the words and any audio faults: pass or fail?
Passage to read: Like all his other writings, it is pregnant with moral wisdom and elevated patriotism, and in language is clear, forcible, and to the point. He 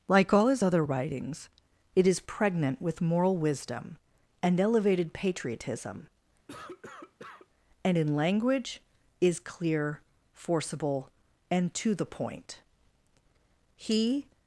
fail